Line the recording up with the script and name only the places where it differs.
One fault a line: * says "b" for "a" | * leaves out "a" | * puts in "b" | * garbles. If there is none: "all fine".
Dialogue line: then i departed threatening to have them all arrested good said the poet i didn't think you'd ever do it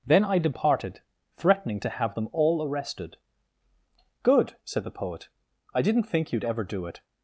all fine